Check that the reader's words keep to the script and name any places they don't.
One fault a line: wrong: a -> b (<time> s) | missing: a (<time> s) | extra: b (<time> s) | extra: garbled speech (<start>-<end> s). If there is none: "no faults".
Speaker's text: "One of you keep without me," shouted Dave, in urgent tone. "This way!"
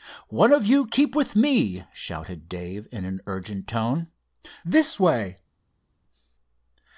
wrong: without -> with (1.1 s)
extra: an (3.0 s)